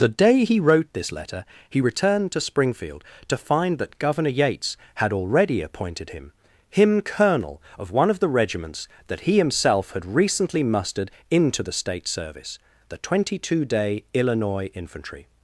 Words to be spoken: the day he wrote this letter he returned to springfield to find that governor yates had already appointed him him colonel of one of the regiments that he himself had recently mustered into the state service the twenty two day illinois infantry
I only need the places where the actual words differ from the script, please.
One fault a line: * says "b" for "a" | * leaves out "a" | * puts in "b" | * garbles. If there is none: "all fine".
all fine